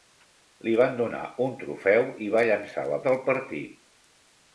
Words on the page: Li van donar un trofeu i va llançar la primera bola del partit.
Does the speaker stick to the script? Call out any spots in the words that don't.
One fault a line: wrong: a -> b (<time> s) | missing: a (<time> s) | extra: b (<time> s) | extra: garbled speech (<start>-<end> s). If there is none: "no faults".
missing: primera bola (3.0 s)